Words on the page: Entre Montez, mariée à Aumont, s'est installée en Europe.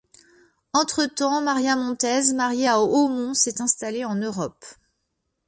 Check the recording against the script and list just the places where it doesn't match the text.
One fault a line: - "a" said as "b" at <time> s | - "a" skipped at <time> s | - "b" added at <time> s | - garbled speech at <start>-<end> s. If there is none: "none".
- "temps Maria" added at 1.1 s